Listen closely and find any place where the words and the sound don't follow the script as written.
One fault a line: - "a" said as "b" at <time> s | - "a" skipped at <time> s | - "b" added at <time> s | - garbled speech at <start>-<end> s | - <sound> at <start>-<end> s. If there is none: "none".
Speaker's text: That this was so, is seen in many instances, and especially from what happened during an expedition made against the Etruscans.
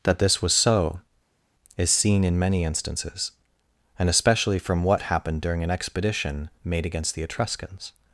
none